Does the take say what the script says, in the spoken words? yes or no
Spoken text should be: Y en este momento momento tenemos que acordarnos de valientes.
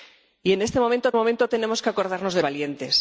yes